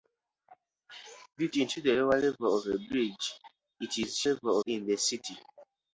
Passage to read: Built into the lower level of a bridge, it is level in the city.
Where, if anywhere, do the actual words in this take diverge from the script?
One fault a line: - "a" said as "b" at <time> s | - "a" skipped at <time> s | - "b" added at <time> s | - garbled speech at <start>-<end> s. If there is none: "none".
none